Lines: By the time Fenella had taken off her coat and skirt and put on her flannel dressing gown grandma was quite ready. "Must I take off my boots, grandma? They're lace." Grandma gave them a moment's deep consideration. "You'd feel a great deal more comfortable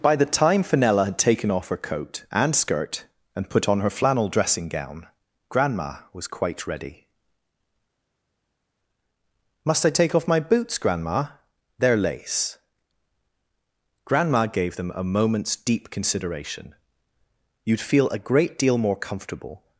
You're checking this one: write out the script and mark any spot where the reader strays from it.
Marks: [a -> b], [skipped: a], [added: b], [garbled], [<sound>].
By the time Fenella had taken off her coat and skirt and put on her flannel dressing gown grandma was quite ready. "Must I take off my boots, grandma? They're lace." Grandma gave them a moment's deep consideration. "You'd feel a great deal more comfortable